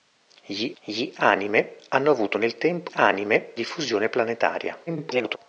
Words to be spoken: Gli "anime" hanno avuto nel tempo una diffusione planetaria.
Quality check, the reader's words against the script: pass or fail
fail